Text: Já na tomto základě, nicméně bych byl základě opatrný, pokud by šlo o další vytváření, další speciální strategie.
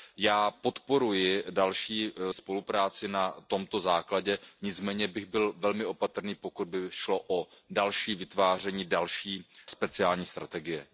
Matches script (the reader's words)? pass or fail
fail